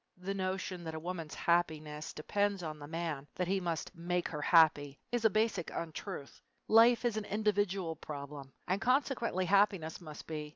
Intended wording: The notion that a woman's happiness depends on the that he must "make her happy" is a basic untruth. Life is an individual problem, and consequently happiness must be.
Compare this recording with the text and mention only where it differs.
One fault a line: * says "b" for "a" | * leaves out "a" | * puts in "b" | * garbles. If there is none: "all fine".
* puts in "man"